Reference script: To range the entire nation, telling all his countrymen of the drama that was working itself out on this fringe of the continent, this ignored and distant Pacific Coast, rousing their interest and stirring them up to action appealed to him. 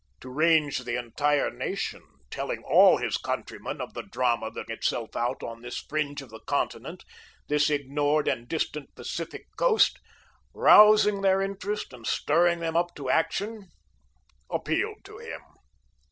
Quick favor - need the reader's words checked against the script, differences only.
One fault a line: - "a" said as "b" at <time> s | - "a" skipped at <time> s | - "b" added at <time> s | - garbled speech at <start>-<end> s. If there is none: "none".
- "was working" skipped at 4.7 s